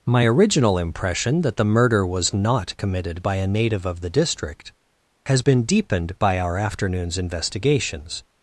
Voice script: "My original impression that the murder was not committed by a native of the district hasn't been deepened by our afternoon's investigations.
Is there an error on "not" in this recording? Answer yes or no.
no